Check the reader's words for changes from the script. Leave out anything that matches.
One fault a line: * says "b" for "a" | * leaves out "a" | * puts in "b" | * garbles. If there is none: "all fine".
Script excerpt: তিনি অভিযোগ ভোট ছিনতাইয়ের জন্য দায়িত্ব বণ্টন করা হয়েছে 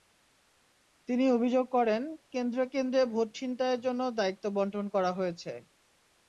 * puts in "করেন কেন্দ্রে কেন্দ্রে"